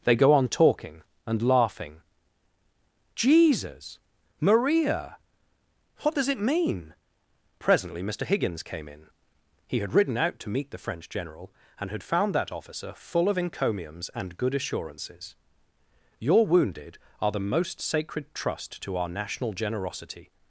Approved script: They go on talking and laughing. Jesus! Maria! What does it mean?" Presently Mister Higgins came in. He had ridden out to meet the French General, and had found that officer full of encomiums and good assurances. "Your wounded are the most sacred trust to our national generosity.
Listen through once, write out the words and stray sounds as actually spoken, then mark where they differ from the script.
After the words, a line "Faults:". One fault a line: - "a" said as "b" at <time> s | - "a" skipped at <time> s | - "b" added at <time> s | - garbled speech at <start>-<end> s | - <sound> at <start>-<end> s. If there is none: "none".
They go on talking and laughing. Jesus! Maria! What does it mean?" Presently Mister Higgins came in. He had ridden out to meet the French General, and had found that officer full of encomiums and good assurances. "Your wounded are the most sacred trust to our national generosity.
Faults:
none